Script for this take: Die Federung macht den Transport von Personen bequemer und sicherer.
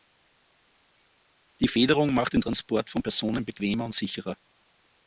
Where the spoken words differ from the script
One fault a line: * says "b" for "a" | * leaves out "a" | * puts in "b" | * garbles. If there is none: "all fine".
all fine